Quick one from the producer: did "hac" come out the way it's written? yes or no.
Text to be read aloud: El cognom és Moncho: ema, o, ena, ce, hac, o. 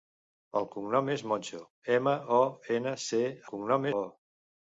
no